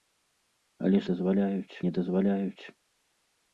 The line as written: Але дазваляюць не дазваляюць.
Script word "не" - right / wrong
right